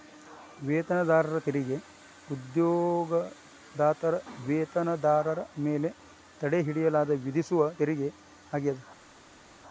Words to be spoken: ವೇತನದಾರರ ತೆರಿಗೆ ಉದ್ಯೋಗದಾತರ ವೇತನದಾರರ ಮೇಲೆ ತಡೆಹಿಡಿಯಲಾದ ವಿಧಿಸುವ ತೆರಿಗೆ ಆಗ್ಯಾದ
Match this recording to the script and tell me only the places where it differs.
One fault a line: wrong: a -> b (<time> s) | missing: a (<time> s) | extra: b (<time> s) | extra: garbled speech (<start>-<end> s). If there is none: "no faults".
no faults